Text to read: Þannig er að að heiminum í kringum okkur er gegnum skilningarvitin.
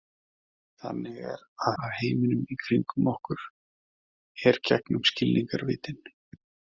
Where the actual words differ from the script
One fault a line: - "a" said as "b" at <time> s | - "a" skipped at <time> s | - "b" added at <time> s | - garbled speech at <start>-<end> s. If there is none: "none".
none